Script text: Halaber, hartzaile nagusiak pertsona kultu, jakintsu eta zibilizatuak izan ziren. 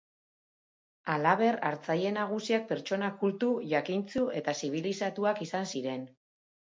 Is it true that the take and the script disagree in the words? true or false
false